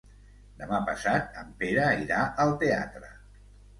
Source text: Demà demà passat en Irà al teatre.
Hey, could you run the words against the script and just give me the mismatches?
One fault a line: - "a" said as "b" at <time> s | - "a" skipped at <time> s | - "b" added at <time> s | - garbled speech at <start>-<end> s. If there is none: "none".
- "demà" skipped at 0.8 s
- "Pere" added at 1.6 s